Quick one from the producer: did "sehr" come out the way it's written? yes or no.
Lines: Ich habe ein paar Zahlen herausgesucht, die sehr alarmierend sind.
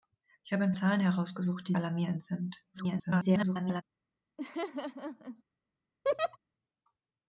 no